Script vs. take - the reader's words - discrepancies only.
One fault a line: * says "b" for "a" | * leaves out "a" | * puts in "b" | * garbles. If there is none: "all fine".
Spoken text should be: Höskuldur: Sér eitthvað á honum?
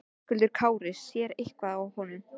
* puts in "Kári"